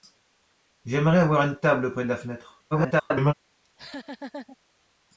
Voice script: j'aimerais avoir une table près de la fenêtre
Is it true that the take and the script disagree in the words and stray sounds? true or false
true